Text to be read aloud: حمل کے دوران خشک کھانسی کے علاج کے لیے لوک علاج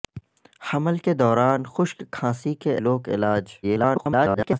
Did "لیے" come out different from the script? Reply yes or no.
yes